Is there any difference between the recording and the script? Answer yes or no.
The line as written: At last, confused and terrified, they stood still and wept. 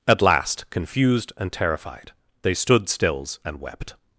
yes